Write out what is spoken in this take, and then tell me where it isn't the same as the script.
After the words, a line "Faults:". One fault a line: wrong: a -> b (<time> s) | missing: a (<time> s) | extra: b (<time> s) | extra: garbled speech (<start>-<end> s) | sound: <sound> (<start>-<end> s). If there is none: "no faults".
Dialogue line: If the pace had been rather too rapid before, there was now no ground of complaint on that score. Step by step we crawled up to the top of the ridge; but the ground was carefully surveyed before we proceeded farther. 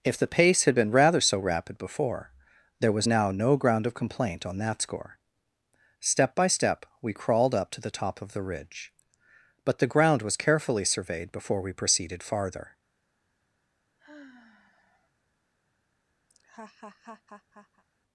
If the pace had been rather so rapid before, there was now no ground of complaint on that score. Step by step we crawled up to the top of the ridge; but the ground was carefully surveyed before we proceeded farther.
Faults:
wrong: too -> so (1.2 s)
sound: sigh (14.0-15.1 s)
sound: laugh (16.3-17.8 s)